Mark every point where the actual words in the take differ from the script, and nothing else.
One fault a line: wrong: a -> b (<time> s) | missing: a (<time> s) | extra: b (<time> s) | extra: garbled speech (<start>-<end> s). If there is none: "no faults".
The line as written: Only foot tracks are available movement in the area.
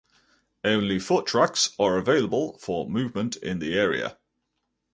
extra: for (2.6 s)